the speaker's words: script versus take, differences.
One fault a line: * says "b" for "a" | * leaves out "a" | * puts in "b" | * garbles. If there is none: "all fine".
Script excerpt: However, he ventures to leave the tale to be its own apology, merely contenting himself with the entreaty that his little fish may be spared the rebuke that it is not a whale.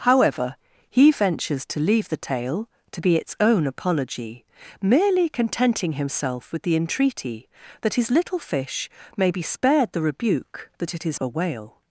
* leaves out "not"